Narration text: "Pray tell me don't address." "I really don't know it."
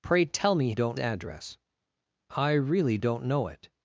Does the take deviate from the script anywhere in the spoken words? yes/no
no